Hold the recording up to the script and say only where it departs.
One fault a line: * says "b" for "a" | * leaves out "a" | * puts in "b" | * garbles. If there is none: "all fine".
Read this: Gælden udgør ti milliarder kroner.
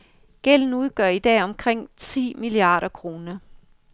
* puts in "i dag omkring"